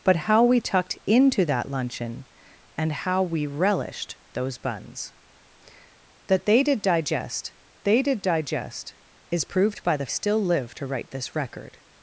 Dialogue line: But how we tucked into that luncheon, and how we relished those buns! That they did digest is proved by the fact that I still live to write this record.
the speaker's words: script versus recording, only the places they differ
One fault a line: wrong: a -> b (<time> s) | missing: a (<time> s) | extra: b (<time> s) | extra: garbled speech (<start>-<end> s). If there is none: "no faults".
extra: they did digest (7.8 s)
missing: fact that I (10.1 s)